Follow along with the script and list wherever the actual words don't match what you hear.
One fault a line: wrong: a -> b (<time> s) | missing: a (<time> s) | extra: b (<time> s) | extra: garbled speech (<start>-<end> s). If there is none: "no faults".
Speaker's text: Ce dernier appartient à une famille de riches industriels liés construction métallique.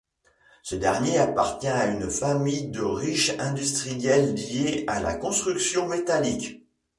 extra: à la (4.9 s)